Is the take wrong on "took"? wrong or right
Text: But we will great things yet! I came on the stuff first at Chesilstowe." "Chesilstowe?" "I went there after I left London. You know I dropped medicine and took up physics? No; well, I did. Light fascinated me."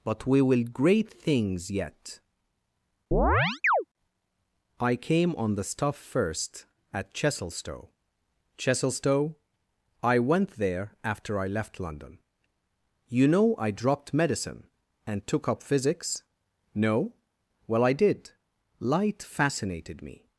right